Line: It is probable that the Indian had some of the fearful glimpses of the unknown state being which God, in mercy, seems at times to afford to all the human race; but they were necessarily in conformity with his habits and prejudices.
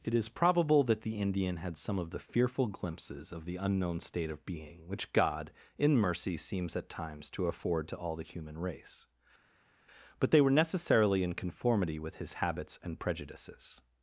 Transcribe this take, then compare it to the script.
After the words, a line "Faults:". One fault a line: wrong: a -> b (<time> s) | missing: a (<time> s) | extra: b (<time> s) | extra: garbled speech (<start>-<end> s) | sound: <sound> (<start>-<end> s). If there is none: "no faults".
It is probable that the Indian had some of the fearful glimpses of the unknown state of being which God, in mercy, seems at times to afford to all the human race; but they were necessarily in conformity with his habits and prejudices.
Faults:
extra: of (4.3 s)